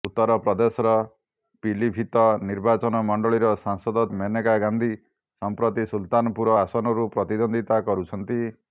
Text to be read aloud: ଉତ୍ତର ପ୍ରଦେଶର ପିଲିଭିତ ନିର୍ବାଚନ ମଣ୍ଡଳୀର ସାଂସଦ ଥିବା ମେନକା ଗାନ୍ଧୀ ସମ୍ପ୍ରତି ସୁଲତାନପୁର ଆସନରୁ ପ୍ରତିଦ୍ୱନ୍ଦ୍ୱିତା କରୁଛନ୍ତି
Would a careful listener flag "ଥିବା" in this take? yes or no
yes